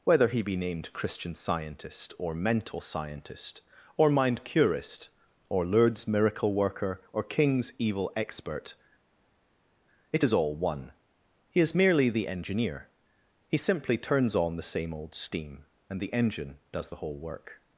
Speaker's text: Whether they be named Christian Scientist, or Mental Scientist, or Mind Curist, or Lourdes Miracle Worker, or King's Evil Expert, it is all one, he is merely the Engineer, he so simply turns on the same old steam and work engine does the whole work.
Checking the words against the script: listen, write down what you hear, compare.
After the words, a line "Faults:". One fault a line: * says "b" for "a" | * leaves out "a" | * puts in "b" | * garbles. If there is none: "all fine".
Whether he be named Christian Scientist, or Mental Scientist, or Mind Curist, or Lourdes Miracle Worker, or King's Evil Expert, it is all one, he is merely the Engineer, he simply turns on the same old steam and the engine does the whole work.
Faults:
* says "he" for "they"
* leaves out "so"
* says "the" for "work"